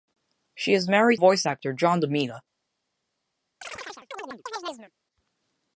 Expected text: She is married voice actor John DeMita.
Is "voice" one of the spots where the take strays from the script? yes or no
no